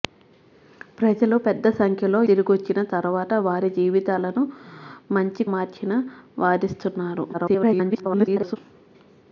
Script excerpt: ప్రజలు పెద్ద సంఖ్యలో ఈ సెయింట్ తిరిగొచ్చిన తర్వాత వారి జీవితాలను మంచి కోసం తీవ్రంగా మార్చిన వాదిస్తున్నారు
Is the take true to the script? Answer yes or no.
no